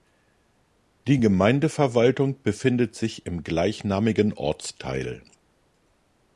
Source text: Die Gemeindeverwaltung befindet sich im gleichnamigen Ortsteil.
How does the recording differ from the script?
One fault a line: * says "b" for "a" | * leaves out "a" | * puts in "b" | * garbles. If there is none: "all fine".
all fine